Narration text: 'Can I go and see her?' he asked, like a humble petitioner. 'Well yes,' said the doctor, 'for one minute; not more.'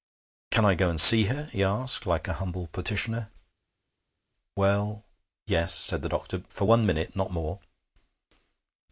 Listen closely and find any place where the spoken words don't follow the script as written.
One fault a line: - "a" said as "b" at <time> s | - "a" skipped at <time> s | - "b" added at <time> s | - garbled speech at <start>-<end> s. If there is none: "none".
none